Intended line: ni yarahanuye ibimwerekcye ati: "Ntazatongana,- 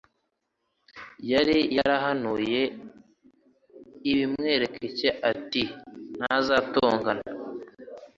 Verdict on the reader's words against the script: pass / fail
fail